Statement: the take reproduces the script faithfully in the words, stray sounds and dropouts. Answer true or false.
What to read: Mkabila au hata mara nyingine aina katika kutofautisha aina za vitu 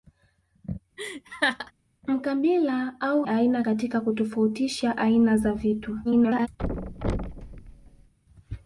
false